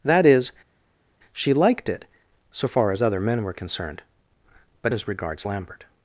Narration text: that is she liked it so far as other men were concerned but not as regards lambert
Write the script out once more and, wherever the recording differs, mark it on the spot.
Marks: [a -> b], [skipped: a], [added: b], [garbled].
that is she liked it so far as other men were concerned but [skipped: not] as regards lambert